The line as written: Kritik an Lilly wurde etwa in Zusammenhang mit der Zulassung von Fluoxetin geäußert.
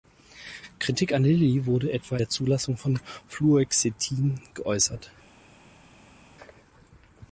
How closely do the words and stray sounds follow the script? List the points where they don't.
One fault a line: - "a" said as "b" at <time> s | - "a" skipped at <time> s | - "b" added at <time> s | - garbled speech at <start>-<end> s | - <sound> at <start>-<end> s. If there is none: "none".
- "in Zusammenhang mit" skipped at 2.2 s